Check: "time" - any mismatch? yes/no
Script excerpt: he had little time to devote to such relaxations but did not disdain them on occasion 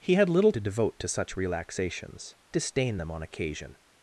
yes